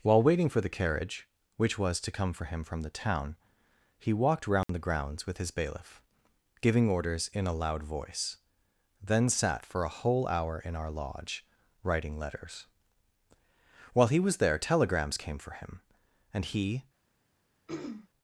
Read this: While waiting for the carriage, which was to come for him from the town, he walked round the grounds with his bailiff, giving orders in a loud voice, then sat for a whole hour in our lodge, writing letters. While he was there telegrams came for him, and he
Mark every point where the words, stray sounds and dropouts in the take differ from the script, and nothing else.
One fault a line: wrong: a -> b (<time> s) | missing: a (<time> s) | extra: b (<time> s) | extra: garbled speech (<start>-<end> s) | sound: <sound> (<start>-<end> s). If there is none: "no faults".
sound: dropout (4.6-4.7 s)
sound: throat clearing (17.7-18.1 s)